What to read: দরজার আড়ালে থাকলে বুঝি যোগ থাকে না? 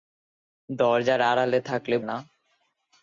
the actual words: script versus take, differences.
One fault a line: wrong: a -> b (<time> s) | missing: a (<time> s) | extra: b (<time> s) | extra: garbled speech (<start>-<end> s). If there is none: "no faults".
missing: বুঝি যোগ থাকে (1.9 s)